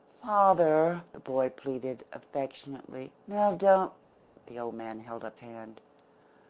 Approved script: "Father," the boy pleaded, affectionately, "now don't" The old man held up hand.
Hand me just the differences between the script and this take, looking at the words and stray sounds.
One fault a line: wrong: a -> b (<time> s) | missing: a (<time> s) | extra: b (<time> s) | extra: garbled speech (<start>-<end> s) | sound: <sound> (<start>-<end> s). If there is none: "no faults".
no faults